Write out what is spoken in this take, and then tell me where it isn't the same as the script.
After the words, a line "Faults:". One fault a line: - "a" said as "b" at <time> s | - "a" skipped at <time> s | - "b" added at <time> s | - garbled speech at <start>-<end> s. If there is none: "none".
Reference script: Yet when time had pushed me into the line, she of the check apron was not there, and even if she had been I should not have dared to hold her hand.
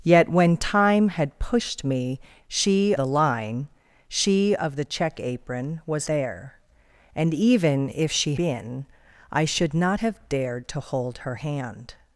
Yet when time had pushed me she the line, she of the check apron was there, and even if she been I should not have dared to hold her hand.
Faults:
- "into" said as "she" at 2.5 s
- "not" skipped at 6.1 s
- "had" skipped at 8.3 s